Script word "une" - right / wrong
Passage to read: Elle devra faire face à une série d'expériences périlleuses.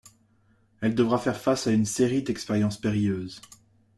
right